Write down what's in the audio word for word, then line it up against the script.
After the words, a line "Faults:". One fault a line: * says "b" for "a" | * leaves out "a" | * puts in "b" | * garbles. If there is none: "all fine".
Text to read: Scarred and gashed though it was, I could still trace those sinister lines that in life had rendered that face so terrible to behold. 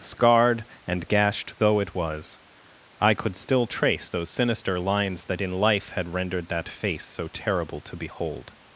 Scarred and gashed though it was, I could still trace those sinister lines that in life had rendered that face so terrible to behold.
Faults:
all fine